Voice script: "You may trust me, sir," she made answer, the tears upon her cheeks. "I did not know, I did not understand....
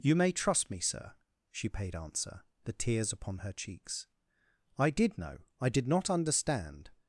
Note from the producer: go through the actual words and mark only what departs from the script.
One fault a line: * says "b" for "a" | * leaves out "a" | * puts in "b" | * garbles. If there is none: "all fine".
* says "paid" for "made"
* leaves out "not"